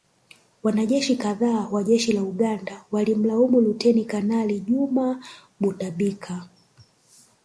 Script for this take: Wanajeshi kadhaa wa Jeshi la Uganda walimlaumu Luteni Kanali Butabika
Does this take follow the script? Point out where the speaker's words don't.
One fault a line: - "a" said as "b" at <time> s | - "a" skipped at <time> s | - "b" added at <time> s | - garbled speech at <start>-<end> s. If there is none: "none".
- "Juma" added at 4.6 s